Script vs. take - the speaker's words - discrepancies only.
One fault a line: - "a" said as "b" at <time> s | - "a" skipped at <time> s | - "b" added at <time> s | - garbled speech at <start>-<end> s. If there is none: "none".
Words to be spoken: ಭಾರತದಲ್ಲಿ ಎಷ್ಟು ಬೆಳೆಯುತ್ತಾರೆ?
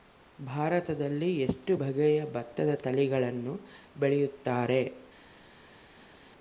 - "ಬಗೆಯ ಭತ್ತದ ತಳಿಗಳನ್ನು" added at 1.7 s